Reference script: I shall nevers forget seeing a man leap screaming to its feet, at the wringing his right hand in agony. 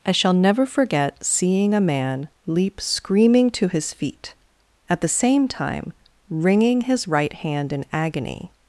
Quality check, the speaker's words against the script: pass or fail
fail